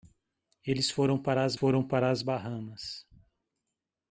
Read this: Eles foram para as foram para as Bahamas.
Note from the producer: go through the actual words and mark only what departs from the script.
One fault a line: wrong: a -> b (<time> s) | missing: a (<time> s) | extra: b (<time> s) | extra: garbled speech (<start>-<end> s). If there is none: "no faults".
no faults